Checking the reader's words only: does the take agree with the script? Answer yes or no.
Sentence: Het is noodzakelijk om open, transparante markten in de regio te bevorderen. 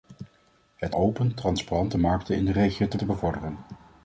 no